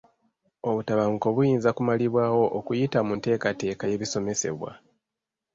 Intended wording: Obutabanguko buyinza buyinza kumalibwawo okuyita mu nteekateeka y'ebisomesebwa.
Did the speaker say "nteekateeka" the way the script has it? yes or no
yes